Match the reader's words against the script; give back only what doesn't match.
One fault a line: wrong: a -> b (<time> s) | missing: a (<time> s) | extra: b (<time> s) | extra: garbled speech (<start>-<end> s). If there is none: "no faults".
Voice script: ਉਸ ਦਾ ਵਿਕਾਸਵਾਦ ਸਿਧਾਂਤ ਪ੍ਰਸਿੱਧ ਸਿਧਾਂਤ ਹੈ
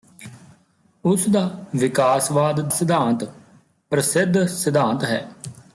no faults